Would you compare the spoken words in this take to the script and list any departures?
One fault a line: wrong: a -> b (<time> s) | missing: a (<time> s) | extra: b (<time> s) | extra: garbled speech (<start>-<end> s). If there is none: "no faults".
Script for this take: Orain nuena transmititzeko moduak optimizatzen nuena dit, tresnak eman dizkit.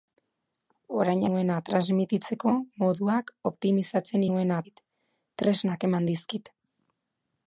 no faults